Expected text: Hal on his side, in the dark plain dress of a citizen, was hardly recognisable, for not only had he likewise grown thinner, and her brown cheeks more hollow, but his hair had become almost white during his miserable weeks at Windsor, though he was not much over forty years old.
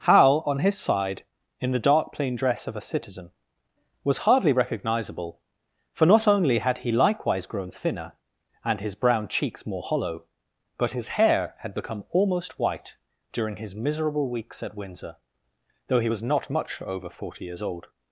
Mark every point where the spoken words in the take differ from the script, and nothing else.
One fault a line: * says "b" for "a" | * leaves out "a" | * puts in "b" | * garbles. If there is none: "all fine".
* says "his" for "her"